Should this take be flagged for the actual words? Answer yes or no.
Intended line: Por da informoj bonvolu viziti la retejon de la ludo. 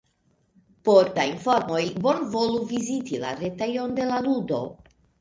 no